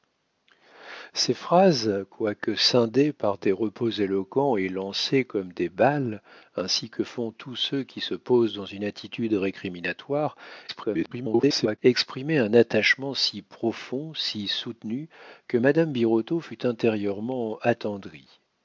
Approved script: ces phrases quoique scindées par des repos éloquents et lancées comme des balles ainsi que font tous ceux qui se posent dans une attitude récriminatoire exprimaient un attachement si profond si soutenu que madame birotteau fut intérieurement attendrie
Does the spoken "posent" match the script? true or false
true